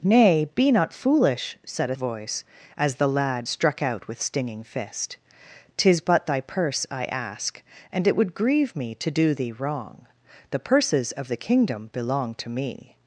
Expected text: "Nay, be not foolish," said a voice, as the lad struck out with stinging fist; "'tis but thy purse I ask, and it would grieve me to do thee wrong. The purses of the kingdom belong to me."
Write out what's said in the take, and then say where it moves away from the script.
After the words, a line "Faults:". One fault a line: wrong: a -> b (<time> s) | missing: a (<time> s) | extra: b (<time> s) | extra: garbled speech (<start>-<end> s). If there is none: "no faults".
"Nay, be not foolish," said a voice, as the lad struck out with stinging fist; "'tis but thy purse I ask, and it would grieve me to do thee wrong. The purses of the kingdom belong to me."
Faults:
no faults